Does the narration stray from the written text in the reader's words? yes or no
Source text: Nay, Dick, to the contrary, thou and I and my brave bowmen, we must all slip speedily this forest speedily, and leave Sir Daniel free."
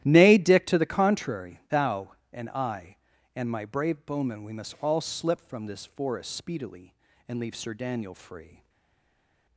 yes